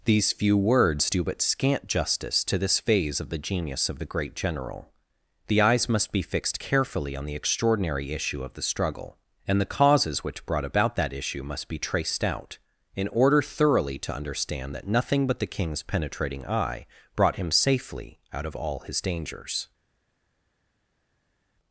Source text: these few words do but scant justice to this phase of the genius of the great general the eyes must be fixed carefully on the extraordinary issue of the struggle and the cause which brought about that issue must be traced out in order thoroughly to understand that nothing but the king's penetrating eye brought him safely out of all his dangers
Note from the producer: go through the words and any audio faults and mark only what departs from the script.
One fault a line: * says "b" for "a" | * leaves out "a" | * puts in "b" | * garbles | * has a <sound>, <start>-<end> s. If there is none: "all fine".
* says "causes" for "cause"